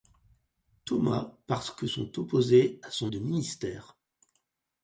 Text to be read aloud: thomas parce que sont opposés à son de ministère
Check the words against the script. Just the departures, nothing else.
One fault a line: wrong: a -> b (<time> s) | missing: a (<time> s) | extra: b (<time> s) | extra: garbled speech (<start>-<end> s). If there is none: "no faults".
no faults